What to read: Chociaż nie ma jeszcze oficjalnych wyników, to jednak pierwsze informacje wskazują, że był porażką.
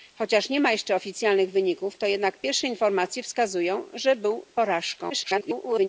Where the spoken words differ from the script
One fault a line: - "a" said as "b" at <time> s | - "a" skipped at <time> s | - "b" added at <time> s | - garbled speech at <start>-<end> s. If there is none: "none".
- garbled speech at 5.1-5.9 s